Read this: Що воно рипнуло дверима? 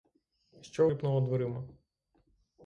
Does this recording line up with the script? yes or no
no